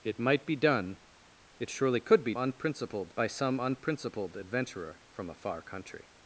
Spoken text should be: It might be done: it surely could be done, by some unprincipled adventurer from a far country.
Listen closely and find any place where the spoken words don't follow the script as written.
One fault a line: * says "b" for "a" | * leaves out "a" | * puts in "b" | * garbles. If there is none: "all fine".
* says "unprincipled" for "done"